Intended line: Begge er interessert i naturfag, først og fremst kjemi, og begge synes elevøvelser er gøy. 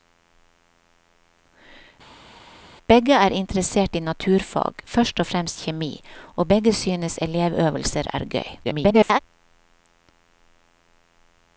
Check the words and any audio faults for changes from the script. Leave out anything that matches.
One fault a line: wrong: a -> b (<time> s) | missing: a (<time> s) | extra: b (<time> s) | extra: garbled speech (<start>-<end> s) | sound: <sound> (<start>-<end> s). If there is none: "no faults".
extra: garbled speech (8.6-9.2 s)